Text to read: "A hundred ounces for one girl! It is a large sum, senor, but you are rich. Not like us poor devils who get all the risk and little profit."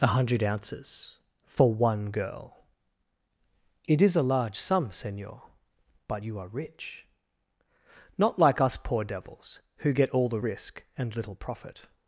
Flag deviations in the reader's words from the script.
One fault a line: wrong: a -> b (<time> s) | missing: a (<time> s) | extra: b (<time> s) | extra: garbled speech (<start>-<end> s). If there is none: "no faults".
no faults